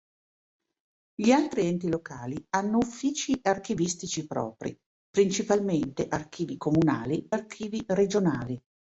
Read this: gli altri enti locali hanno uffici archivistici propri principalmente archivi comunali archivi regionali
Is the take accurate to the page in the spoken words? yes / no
yes